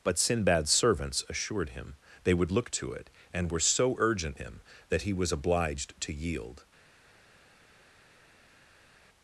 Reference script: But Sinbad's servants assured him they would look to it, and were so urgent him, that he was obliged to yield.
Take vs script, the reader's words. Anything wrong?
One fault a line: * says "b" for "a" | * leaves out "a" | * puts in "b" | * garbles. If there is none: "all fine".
all fine